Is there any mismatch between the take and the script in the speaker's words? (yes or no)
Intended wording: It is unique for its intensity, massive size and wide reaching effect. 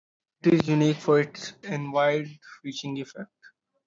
yes